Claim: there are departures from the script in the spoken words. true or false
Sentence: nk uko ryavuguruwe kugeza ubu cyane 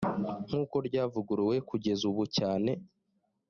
false